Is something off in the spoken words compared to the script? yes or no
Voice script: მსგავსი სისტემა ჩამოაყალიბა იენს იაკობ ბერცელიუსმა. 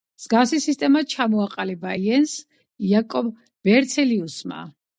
no